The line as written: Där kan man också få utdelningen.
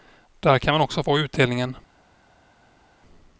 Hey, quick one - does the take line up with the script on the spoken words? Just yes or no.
yes